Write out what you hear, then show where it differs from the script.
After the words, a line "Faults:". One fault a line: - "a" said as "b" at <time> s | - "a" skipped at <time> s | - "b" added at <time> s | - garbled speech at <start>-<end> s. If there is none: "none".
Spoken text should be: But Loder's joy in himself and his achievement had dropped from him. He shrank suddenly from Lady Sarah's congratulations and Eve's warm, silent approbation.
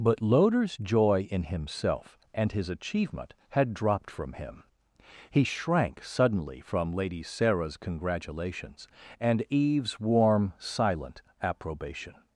But Loder's joy in himself and his achievement had dropped from him. He shrank suddenly from Lady Sarah's congratulations and Eve's warm, silent approbation.
Faults:
none